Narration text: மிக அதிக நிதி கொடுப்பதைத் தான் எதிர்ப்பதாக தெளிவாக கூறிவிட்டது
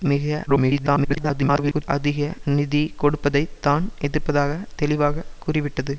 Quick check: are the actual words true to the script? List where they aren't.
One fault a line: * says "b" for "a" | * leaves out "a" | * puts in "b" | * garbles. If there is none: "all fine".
* garbles